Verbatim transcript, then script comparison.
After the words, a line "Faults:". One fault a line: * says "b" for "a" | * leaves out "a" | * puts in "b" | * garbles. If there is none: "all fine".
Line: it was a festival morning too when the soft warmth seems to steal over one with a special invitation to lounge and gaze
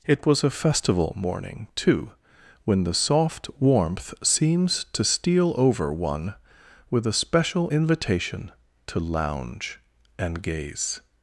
it was a festival morning too when the soft warmth seems to steal over one with a special invitation to lounge and gaze
Faults:
all fine